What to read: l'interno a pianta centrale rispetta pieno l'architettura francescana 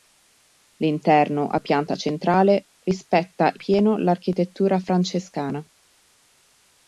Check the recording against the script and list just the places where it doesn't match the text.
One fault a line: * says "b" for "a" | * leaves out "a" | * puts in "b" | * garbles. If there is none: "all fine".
all fine